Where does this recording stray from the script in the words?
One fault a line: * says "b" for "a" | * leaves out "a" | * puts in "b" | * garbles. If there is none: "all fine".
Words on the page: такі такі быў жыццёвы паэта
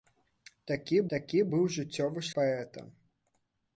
all fine